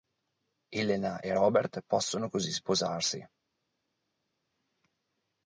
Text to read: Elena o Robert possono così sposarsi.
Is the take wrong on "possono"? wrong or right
right